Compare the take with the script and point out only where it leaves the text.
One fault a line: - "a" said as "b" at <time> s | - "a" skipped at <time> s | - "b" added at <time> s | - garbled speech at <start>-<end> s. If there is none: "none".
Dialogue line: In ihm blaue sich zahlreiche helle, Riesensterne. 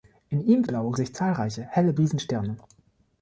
none